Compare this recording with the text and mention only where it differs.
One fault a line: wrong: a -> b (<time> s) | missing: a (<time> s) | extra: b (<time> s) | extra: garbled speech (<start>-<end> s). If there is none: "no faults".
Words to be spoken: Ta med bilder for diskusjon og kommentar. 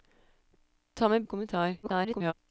missing: bilder for diskusjon (1.2 s)
extra: garbled speech (1.8-2.3 s)